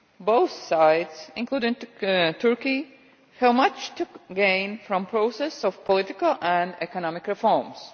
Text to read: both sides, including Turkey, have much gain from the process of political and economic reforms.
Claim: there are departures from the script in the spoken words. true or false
true